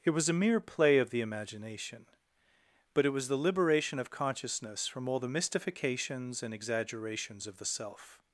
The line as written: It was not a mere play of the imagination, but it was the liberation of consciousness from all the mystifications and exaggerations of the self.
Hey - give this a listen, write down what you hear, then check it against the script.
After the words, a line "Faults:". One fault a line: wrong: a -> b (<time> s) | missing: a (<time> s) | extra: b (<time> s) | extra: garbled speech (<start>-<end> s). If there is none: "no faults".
It was a mere play of the imagination, but it was the liberation of consciousness from all the mystifications and exaggerations of the self.
Faults:
missing: not (0.3 s)